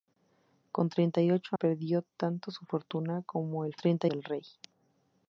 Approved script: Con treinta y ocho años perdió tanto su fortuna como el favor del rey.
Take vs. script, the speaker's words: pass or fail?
fail